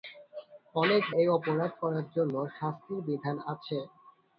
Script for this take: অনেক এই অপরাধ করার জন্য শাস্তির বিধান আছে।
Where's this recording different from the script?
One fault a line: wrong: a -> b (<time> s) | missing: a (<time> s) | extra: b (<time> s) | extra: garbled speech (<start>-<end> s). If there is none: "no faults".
no faults